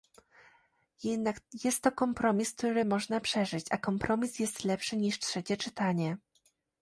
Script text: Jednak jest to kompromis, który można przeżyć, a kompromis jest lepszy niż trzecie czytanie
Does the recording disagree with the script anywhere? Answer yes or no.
no